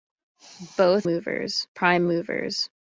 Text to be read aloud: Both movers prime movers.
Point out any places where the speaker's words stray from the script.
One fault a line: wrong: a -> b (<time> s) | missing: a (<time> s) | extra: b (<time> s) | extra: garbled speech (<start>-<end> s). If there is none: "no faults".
no faults